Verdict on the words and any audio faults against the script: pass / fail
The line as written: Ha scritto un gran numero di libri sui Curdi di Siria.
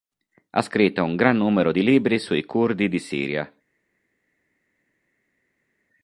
pass